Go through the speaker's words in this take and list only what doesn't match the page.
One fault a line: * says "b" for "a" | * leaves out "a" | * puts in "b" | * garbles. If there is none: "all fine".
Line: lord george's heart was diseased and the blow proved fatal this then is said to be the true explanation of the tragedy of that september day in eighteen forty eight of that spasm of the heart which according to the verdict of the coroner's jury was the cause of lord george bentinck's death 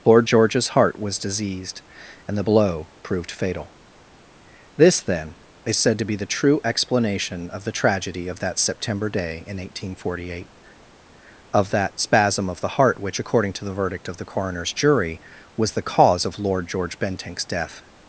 all fine